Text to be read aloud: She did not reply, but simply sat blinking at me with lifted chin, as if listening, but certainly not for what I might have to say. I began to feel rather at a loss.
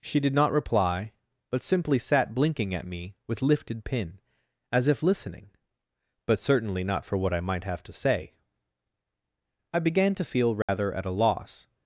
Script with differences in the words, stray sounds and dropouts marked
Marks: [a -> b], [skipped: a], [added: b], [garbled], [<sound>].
She did not reply, but simply sat blinking at me with lifted [chin, -> pin] as if listening, but certainly not for what I might have to say. I began to feel rather [dropout] at a loss.